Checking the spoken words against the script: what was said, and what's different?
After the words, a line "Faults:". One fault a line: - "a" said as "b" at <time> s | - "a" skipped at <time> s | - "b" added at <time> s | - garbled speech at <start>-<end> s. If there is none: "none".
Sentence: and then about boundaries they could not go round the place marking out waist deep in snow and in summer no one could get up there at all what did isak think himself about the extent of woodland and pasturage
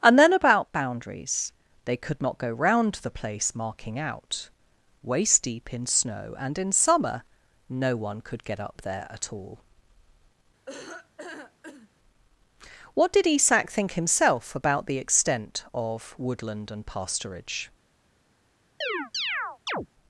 and then about boundaries they could not go round the place marking out waist deep in snow and in summer no one could get up there at all what did isak think himself about the extent of woodland and pasturage
Faults:
none